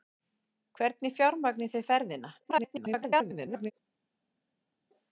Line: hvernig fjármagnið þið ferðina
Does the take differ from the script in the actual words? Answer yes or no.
yes